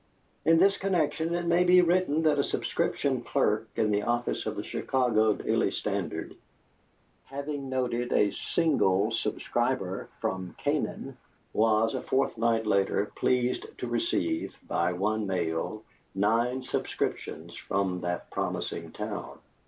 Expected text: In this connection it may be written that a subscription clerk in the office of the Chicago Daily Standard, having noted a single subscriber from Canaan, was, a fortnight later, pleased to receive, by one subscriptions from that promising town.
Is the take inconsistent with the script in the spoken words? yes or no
yes